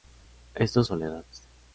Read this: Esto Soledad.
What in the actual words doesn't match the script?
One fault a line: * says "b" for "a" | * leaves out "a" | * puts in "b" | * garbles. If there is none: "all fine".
all fine